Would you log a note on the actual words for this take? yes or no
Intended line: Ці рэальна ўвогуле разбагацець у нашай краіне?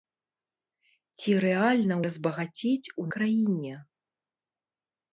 yes